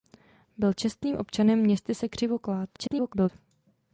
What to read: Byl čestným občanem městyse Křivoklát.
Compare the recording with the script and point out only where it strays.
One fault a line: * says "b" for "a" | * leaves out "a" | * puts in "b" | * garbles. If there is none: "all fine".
* garbles